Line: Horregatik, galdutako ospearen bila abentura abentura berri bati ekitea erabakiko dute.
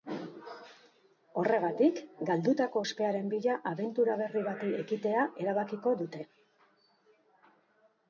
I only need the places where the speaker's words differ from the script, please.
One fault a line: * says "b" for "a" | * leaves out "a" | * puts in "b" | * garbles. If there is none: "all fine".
* leaves out "abentura"